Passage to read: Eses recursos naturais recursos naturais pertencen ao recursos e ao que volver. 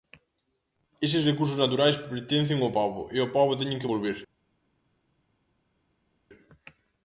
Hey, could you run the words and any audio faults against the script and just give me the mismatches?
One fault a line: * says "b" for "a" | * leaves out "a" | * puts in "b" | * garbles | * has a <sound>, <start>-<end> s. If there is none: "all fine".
* leaves out "recursos naturais"
* says "pobo" for "recursos"
* puts in "pobo teñen"